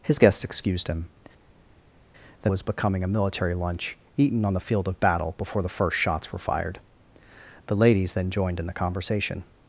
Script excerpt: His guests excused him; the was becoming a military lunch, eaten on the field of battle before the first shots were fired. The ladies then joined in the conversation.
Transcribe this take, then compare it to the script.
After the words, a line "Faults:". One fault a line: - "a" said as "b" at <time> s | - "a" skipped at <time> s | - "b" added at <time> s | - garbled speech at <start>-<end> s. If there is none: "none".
His guests excused him; the was becoming a military lunch, eaten on the field of battle before the first shots were fired. The ladies then joined in the conversation.
Faults:
none